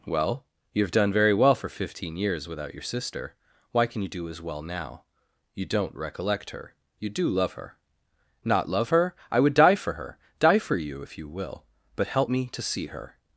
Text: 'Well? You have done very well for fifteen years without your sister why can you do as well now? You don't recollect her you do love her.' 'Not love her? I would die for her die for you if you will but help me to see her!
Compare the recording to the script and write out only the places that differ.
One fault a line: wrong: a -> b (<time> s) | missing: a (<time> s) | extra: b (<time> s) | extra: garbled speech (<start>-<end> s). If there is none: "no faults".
no faults